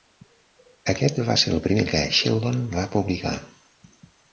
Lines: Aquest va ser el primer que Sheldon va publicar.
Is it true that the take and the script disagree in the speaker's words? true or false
false